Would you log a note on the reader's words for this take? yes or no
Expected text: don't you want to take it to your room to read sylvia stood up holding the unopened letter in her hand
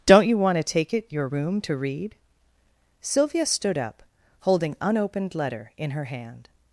yes